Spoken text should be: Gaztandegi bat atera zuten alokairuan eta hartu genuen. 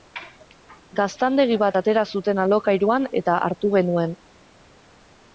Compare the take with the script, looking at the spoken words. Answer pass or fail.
pass